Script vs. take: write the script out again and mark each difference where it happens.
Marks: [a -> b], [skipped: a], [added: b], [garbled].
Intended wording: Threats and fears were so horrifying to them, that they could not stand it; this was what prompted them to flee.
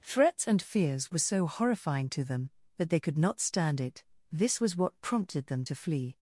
Threats and fears were so horrifying to them, that they could not stand it; this was what prompted them to flee.